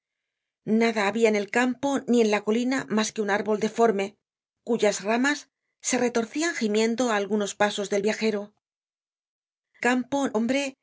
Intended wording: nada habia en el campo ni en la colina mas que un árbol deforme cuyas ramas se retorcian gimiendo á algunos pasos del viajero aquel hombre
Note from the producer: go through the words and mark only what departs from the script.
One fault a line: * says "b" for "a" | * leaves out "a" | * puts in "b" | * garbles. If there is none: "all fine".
* says "campo" for "aquel"